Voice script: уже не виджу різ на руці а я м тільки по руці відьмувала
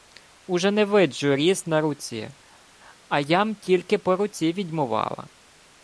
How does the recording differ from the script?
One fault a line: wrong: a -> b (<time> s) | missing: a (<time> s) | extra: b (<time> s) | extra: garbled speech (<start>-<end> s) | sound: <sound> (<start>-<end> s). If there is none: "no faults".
no faults